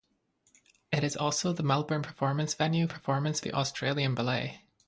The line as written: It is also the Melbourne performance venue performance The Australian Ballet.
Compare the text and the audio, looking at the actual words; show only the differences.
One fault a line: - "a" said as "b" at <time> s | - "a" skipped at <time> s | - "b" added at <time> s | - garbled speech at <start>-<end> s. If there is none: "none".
none